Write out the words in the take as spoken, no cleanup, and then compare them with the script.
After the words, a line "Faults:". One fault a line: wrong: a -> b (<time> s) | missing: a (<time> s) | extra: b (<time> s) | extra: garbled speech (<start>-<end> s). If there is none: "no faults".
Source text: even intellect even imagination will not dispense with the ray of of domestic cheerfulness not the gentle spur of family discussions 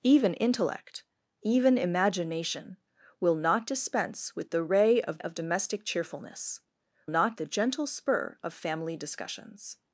even intellect even imagination will not dispense with the ray of of domestic cheerfulness not the gentle spur of family discussions
Faults:
no faults